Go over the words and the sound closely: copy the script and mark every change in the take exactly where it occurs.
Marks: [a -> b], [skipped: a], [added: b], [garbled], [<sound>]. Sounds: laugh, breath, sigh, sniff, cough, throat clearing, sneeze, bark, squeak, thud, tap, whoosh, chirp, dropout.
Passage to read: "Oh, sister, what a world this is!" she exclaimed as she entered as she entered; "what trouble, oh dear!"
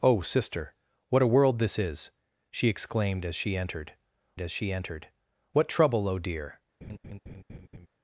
"Oh, sister, what a world this is!" she exclaimed as she entered as she entered; "what trouble, oh dear!" [laugh]